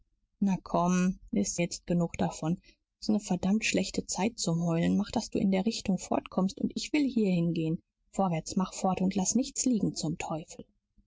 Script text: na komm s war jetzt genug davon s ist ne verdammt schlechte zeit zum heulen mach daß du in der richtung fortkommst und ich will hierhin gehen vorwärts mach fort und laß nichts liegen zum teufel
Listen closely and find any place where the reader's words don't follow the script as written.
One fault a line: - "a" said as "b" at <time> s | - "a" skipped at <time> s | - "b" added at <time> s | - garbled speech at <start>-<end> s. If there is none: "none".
- "war" said as "ist" at 1.5 s